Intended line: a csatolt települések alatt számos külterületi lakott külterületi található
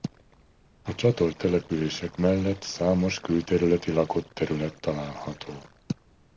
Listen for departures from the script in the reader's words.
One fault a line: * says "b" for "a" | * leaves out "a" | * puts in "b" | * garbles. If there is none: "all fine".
* says "mellett" for "alatt"
* says "terület" for "külterületi"